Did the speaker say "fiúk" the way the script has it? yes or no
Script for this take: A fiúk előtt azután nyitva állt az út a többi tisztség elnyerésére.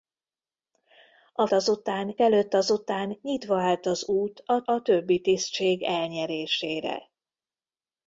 no